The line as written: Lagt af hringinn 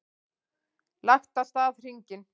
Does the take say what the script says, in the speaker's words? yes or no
no